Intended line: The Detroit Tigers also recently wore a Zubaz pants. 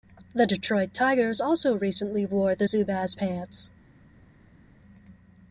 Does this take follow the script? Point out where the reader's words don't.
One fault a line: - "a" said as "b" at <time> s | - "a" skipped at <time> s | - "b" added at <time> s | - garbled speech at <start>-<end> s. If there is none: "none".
- "a" said as "the" at 2.5 s